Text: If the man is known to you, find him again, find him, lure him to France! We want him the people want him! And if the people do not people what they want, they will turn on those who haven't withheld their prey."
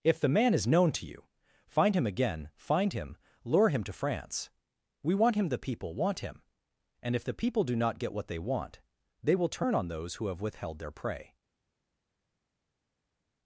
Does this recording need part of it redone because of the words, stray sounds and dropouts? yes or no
yes